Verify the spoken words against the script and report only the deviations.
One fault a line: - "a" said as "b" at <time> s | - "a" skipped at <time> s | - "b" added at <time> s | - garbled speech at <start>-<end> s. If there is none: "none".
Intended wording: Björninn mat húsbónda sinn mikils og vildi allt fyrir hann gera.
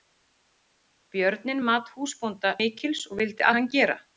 - "sinn" skipped at 2.5 s
- "allt fyrir" skipped at 3.5 s